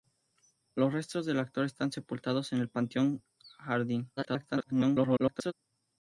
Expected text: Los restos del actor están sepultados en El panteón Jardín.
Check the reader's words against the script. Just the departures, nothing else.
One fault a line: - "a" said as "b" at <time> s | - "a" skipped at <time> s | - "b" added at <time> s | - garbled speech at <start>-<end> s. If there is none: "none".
- garbled speech at 4.2-5.5 s